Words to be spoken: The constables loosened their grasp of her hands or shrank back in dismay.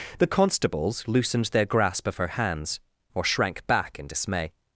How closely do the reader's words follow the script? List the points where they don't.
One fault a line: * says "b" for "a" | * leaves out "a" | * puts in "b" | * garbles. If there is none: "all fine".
all fine